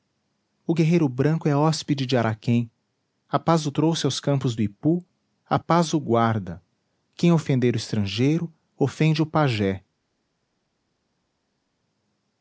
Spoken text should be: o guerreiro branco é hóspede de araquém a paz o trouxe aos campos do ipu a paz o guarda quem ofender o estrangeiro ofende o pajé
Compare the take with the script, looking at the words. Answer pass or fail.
pass